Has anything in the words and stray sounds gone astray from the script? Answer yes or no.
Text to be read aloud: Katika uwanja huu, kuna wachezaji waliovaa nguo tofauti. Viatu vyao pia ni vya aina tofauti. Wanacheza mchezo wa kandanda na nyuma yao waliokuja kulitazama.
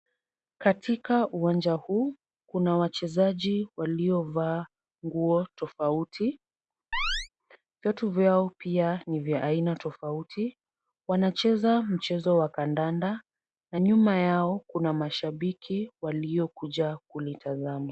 yes